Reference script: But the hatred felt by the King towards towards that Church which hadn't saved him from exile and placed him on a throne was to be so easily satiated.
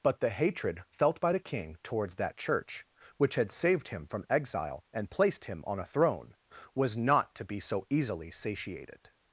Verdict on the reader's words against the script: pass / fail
fail